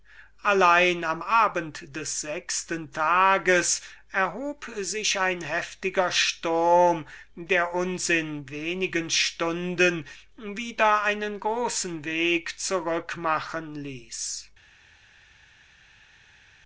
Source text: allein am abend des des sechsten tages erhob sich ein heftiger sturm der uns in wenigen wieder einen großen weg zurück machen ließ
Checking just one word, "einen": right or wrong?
right